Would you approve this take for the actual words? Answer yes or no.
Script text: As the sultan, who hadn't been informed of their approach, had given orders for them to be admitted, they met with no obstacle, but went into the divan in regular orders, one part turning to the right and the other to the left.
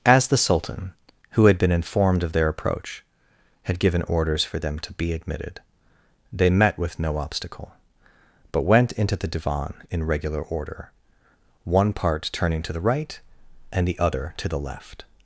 no